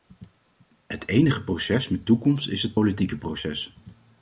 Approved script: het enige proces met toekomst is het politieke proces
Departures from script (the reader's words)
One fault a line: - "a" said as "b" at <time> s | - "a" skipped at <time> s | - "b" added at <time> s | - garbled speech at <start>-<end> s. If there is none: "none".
none